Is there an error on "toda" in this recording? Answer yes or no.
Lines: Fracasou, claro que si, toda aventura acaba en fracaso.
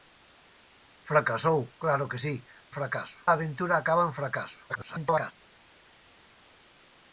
yes